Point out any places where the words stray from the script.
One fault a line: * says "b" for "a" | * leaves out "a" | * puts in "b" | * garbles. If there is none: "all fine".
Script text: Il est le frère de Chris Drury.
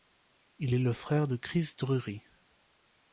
all fine